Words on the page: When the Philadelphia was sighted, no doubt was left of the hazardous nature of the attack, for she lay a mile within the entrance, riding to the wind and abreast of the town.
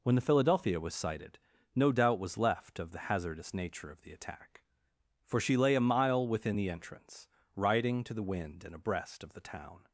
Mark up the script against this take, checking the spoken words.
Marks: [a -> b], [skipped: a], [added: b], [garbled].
When the Philadelphia was sighted, no doubt was left of the hazardous nature of the attack, for she lay a mile within the entrance, riding to the wind and abreast of the town.